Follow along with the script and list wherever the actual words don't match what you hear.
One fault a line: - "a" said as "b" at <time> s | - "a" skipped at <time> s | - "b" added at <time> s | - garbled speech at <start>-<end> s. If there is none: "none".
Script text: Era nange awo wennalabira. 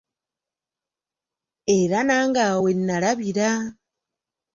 none